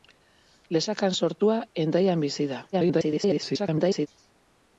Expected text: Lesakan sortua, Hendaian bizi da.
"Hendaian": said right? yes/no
yes